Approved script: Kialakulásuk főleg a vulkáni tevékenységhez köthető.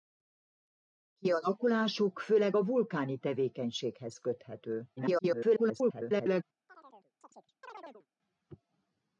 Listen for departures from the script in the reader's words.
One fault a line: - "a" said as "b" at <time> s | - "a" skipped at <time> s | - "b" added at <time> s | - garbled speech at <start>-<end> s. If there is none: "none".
- garbled speech at 5.0-6.4 s